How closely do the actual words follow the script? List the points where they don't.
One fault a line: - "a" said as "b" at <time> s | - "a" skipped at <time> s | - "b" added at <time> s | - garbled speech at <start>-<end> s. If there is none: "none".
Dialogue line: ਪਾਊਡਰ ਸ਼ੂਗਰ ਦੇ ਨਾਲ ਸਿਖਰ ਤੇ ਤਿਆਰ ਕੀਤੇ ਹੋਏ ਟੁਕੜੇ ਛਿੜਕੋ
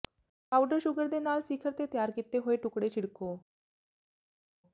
none